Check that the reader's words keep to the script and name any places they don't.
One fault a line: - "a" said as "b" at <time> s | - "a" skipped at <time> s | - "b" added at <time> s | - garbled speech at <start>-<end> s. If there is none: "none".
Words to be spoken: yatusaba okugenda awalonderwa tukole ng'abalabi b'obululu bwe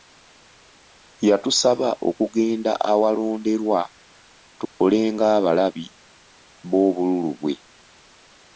none